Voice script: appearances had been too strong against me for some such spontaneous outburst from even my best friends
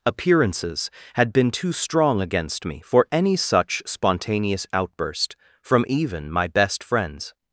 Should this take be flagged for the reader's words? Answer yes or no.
yes